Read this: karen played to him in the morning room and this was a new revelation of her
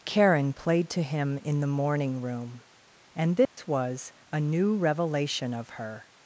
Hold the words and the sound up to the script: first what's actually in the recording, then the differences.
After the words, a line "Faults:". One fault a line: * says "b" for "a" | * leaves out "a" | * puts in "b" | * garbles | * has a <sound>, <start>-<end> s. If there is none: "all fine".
karen played to him in the morning room and this was a new revelation of her
Faults:
* has a dropout, 3.5-3.6 s